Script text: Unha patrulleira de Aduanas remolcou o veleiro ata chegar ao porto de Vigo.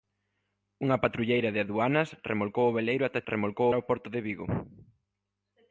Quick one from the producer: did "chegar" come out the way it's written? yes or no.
no